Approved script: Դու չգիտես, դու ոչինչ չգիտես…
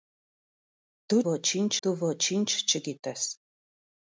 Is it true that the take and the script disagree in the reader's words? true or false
true